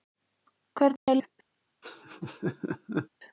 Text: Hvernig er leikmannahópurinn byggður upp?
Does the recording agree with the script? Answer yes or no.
no